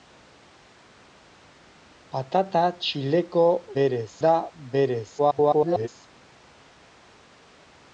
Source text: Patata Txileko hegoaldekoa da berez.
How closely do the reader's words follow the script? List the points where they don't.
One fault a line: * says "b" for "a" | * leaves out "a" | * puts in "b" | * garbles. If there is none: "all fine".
* says "berez" for "hegoaldekoa"
* garbles